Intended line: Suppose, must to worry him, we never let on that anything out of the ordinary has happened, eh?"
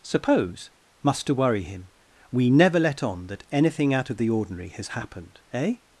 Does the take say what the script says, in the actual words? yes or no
yes